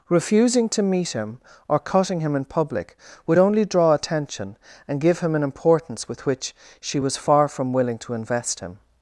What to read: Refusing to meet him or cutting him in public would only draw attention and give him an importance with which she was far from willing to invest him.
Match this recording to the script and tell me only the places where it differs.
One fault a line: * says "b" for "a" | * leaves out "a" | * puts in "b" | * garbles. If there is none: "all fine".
all fine